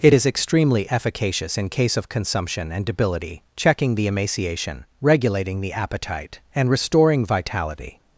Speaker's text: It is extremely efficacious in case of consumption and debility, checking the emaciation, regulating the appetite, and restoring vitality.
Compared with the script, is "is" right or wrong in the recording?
right